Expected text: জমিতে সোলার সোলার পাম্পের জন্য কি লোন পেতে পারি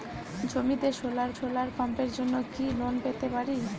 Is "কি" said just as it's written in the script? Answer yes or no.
yes